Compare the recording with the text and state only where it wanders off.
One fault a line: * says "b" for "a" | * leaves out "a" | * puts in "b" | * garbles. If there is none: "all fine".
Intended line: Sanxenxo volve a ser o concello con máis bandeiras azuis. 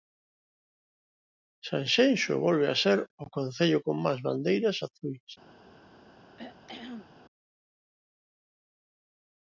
all fine